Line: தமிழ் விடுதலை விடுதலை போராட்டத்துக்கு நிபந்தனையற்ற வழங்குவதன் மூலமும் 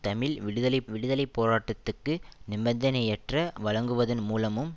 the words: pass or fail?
pass